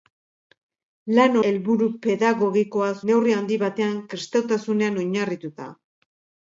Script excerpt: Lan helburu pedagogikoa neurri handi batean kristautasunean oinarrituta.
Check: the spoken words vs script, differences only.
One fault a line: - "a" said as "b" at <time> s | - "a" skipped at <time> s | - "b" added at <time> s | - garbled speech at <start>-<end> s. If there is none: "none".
none